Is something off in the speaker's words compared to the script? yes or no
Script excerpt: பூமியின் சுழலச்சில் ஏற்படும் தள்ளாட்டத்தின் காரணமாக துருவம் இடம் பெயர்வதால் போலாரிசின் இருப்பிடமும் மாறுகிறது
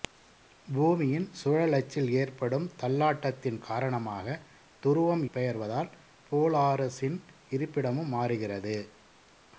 yes